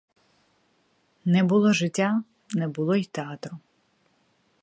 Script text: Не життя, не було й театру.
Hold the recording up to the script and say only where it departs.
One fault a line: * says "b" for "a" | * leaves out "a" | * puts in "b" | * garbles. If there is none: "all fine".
* puts in "було"